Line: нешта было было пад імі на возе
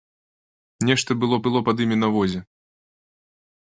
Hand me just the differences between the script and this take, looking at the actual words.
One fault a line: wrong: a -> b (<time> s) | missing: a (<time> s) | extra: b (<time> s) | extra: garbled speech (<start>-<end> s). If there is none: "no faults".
no faults